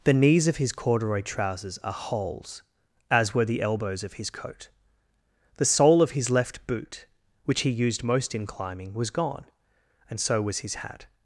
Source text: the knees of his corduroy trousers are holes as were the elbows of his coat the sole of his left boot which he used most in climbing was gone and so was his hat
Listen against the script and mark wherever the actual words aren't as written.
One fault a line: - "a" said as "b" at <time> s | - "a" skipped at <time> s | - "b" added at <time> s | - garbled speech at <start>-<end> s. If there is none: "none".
none